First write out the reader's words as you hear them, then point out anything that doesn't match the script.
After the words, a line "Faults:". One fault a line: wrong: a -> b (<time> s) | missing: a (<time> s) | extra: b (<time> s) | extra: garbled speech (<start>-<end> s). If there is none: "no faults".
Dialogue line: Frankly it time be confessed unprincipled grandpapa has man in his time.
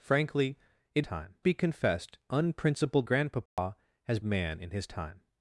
Frankly it time be confessed unprincipled grandpapa has man in his time.
Faults:
no faults